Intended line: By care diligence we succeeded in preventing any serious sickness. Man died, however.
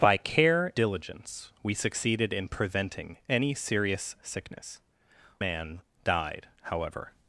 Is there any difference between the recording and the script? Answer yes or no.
no